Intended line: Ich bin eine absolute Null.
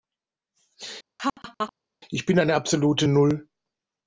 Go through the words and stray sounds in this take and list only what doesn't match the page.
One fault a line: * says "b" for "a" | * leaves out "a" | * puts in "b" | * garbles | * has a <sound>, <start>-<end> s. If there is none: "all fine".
* has a laugh, 1.2-1.7 s